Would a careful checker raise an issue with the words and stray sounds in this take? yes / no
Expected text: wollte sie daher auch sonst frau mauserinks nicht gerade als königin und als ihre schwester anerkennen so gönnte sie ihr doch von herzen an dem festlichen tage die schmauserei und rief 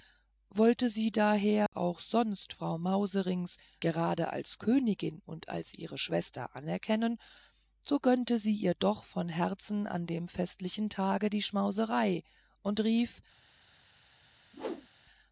yes